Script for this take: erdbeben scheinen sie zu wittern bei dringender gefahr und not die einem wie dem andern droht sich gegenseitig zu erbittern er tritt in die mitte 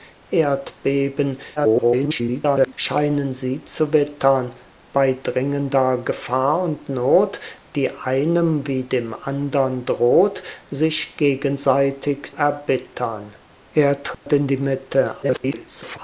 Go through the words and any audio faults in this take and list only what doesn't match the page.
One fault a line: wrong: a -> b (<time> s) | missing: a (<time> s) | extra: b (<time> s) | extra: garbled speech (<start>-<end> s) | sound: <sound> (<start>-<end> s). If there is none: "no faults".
extra: garbled speech (1.6-2.7 s)
missing: zu (12.3 s)
sound: dropout (14.1-14.3 s)
extra: garbled speech (15.2-16.0 s)